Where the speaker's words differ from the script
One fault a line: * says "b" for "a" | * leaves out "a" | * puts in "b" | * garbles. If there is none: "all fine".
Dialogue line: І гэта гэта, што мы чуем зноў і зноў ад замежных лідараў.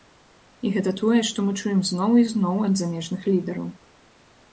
* says "тое" for "гэта"